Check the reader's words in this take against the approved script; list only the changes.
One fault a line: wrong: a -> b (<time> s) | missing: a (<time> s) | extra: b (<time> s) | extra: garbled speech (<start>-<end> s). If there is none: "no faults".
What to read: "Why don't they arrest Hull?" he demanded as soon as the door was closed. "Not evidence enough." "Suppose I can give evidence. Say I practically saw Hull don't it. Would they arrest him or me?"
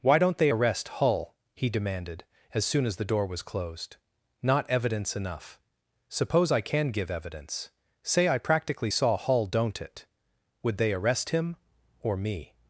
no faults